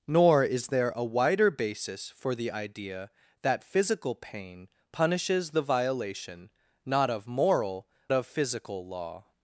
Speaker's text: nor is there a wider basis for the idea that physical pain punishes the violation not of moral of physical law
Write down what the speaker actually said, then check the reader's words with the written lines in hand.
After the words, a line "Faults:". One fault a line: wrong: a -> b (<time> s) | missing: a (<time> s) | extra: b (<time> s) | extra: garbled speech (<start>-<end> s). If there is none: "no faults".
nor is there a wider basis for the idea that physical pain punishes the violation not of moral of physical law
Faults:
no faults